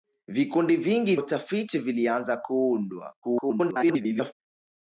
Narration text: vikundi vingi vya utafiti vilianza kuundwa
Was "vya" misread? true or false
true